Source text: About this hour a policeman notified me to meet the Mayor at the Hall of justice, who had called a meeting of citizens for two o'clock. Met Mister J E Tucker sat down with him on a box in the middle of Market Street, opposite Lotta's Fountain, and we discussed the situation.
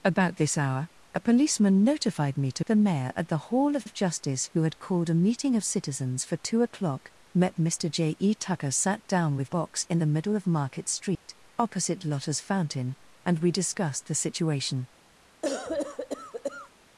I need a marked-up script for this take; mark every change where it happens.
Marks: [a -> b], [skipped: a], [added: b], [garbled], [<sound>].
About this hour a policeman notified me to [skipped: meet] the Mayor at the Hall of [added: of] justice, who had called a meeting of citizens for two o'clock. Met Mister J E Tucker sat down with [skipped: him on a] box in the middle of Market Street, [dropout] opposite Lotta's Fountain, and we discussed the situation. [cough]